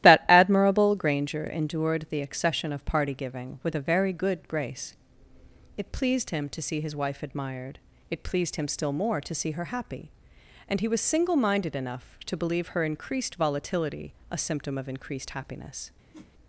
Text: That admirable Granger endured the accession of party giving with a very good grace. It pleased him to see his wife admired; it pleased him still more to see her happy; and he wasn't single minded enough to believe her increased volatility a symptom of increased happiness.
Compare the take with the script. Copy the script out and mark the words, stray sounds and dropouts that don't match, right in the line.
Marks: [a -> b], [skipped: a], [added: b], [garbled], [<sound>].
That admirable Granger endured the accession of party giving with a very good grace. It pleased him to see his wife admired; it pleased him still more to see her happy; and he [wasn't -> was] single minded enough to believe her increased volatility a symptom of increased happiness. [whoosh]